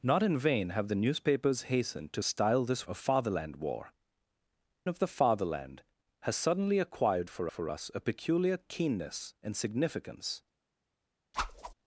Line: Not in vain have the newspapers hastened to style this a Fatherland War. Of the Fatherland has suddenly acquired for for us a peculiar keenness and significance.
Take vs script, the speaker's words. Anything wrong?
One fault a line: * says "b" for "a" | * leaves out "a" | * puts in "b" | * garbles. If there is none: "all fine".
all fine